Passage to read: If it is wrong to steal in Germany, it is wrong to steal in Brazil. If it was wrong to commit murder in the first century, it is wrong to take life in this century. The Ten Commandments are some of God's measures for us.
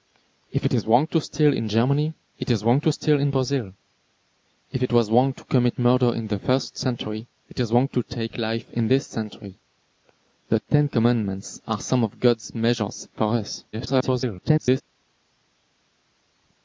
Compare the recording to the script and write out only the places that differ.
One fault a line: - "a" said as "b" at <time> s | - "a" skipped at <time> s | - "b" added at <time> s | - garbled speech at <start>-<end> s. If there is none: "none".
- garbled speech at 13.7-14.8 s